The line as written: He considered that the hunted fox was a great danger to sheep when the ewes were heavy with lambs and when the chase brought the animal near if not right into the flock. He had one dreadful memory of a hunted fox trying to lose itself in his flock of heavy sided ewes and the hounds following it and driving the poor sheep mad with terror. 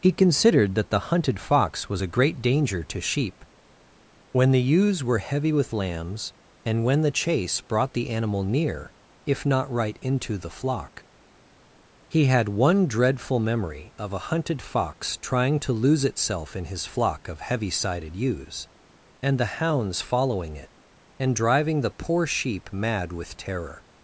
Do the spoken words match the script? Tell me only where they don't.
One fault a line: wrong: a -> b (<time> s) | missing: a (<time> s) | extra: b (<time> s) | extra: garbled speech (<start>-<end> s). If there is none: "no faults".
no faults